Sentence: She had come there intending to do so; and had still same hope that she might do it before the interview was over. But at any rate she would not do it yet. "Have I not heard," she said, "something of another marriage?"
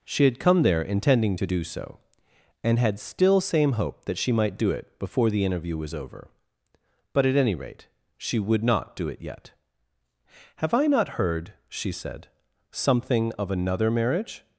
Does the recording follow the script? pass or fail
pass